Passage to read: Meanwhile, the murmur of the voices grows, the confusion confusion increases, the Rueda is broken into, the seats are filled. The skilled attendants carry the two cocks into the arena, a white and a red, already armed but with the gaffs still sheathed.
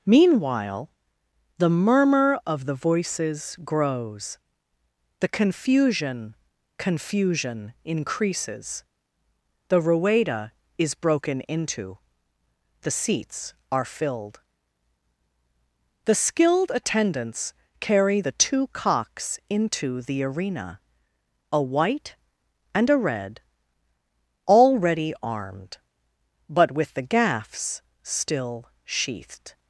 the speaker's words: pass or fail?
pass